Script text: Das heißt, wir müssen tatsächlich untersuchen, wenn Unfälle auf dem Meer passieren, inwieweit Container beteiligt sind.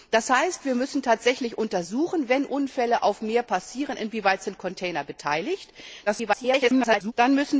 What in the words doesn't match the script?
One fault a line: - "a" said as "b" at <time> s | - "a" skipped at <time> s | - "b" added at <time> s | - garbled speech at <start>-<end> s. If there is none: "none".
- garbled speech at 6.1-7.1 s